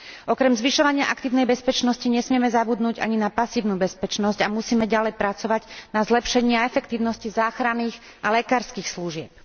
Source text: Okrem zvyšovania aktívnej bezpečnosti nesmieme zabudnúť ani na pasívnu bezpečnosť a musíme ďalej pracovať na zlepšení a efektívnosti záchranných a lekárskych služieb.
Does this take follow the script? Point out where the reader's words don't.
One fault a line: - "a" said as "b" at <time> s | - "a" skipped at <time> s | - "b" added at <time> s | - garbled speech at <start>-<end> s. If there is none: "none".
none